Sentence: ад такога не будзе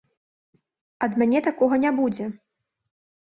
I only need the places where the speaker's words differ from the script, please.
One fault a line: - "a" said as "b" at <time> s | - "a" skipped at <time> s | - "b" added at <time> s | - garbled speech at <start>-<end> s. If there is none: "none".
- "мяне" added at 1.2 s